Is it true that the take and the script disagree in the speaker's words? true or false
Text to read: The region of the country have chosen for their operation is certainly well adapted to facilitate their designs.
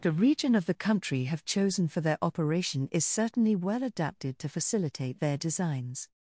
false